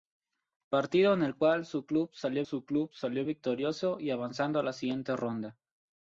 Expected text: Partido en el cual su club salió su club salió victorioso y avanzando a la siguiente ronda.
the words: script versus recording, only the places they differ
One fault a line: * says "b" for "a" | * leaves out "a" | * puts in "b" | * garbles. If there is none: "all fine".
all fine